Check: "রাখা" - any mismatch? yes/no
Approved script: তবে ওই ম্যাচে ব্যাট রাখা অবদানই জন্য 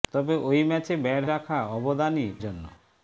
no